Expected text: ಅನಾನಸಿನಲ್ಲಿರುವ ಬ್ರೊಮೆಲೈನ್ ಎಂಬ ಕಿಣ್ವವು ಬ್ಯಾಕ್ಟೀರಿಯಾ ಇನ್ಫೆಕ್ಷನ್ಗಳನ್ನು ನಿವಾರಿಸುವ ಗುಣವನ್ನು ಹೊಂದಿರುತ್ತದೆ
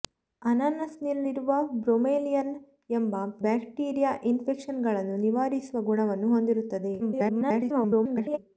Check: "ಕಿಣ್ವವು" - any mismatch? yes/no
yes